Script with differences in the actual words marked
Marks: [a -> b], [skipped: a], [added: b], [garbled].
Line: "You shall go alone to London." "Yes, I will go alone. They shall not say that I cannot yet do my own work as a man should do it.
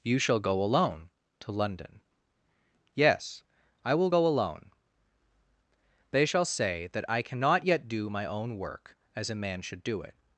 "You shall go alone to London." "Yes, I will go alone. They shall [skipped: not] say that I cannot yet do my own work as a man should do it.